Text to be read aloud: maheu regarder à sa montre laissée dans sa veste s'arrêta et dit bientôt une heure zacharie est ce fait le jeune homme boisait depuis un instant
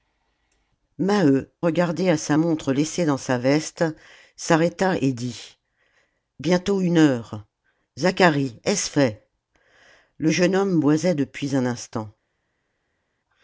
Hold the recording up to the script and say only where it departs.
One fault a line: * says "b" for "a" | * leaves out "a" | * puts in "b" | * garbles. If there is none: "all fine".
all fine